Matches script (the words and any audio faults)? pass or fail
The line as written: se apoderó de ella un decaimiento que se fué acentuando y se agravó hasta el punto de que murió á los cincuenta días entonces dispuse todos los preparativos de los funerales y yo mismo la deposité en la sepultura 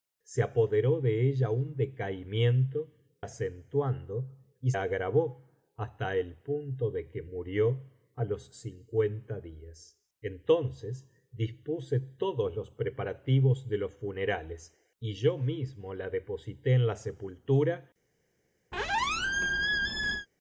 fail